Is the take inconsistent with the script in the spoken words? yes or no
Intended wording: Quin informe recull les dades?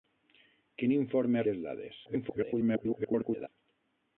yes